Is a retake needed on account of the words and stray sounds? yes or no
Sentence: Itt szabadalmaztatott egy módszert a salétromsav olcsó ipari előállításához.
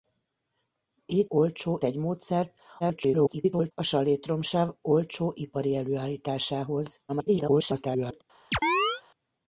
yes